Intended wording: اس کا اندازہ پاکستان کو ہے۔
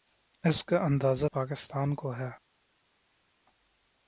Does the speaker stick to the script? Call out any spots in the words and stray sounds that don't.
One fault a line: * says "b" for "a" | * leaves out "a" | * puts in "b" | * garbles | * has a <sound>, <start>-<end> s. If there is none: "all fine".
all fine